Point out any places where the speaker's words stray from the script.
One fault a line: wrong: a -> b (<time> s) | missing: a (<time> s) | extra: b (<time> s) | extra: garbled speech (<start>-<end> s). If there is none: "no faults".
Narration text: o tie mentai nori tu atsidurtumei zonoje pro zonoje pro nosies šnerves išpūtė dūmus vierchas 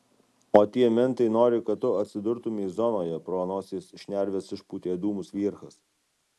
extra: kad (1.7 s)
missing: zonoje pro (3.4 s)